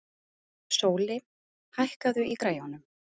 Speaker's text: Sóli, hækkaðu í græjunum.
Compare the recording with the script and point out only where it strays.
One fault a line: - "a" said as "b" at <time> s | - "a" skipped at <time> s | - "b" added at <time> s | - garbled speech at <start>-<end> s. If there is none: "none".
none